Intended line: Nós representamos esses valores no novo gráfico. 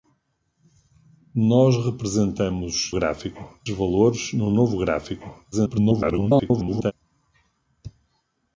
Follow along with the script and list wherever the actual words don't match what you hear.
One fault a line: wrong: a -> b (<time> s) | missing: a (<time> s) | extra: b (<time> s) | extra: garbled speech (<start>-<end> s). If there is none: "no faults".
wrong: esses -> gráfico (2.9 s)
extra: garbled speech (5.5-6.9 s)